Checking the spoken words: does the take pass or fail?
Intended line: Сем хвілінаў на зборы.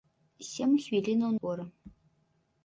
fail